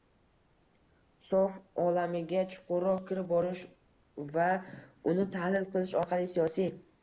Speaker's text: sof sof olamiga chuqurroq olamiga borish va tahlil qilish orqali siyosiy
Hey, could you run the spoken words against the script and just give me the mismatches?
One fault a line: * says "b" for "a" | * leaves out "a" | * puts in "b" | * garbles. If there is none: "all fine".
* leaves out "sof"
* says "kirib" for "olamiga"
* puts in "uni"